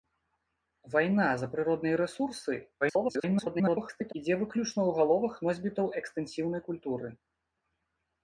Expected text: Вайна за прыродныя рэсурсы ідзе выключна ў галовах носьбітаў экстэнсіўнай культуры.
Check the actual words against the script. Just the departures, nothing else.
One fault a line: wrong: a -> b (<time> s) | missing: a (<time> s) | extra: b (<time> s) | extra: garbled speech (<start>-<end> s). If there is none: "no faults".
extra: garbled speech (2.8-4.1 s)